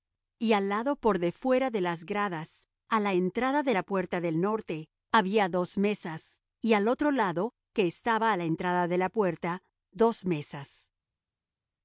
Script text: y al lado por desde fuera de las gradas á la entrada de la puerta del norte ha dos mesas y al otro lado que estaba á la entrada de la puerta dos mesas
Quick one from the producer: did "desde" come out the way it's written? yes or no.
no